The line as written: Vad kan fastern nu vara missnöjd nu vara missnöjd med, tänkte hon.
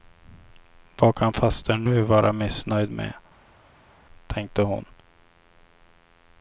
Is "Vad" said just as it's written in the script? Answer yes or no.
yes